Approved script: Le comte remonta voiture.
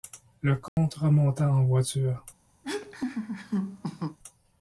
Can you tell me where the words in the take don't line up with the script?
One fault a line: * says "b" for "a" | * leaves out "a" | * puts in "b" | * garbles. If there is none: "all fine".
* puts in "en"